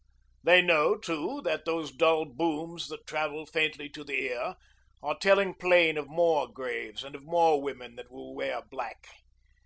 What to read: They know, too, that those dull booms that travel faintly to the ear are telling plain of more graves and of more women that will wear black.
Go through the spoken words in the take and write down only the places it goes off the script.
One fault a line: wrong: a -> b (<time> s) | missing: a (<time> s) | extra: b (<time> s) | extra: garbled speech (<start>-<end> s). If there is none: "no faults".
no faults